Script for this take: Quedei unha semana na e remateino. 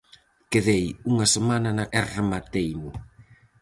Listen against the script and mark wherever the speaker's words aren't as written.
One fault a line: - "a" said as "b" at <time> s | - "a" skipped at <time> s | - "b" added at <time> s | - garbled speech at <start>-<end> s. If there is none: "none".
none